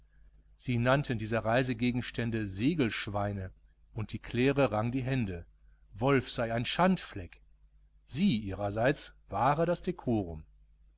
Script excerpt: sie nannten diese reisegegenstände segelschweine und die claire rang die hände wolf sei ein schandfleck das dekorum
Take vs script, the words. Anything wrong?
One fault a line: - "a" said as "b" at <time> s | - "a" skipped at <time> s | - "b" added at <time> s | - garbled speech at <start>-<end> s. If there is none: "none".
- "sie ihrerseits wahre" added at 8.1 s